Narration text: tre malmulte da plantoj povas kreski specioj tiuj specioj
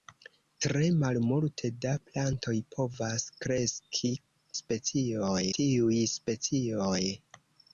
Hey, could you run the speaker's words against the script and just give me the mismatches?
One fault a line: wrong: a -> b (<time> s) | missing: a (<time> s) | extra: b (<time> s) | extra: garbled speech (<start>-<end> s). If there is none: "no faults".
no faults